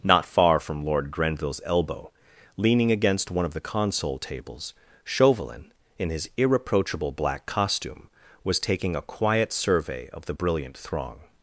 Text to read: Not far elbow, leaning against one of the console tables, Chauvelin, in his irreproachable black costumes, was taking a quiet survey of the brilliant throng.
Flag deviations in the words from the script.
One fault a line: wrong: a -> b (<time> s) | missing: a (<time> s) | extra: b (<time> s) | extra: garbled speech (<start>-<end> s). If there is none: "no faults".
extra: from Lord Grenville's (0.6 s)
wrong: costumes -> costume (7.5 s)